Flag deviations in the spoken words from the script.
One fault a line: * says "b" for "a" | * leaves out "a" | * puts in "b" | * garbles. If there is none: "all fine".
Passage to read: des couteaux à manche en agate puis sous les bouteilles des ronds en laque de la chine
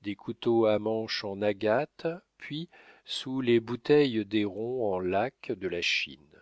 all fine